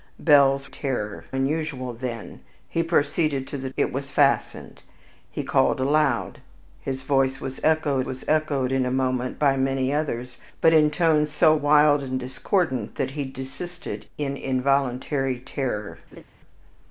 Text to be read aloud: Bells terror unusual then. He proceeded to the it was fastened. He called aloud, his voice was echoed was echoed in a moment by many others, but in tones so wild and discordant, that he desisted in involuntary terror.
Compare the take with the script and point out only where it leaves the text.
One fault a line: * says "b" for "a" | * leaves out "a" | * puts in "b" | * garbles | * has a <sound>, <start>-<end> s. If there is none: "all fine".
* has a laugh, 16.1-16.2 s